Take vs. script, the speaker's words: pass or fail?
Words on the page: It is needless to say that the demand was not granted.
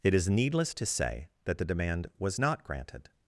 pass